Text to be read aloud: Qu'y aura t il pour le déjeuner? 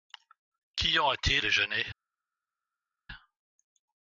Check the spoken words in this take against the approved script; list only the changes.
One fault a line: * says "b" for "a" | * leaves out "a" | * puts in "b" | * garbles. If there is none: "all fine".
* leaves out "il pour le"